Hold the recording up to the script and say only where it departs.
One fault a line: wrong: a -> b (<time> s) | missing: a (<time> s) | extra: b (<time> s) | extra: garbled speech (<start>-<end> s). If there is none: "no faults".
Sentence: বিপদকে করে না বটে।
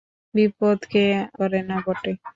no faults